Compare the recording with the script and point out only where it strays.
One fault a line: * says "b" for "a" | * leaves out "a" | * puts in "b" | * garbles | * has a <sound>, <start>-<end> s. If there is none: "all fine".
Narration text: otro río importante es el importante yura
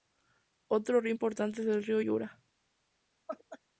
* says "río" for "importante"
* has a laugh, 3.3-3.6 s